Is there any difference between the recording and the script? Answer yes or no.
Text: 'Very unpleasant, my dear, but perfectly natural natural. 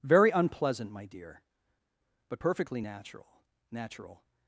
no